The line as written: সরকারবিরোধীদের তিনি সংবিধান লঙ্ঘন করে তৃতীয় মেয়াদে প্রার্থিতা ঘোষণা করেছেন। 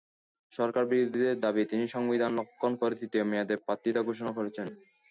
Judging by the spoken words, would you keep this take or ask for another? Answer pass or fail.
fail